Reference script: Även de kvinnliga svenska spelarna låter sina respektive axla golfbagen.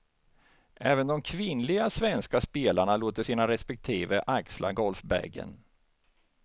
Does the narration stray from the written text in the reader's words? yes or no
no